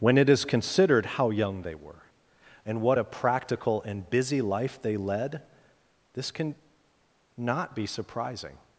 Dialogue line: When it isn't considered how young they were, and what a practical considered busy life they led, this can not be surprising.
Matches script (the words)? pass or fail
fail